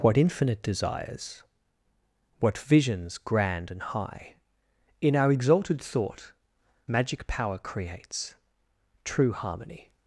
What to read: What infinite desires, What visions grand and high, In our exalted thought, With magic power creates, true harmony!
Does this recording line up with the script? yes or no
no